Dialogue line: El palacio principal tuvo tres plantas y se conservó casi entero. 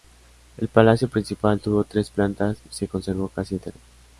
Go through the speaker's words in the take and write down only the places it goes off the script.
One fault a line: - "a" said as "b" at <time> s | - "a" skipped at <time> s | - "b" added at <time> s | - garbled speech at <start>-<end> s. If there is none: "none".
none